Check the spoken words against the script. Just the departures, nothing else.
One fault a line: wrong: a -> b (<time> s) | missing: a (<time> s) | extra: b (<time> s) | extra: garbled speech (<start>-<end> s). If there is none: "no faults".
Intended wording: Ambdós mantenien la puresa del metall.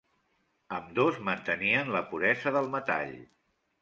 no faults